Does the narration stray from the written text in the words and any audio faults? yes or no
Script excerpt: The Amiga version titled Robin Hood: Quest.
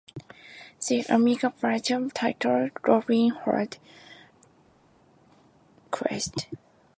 no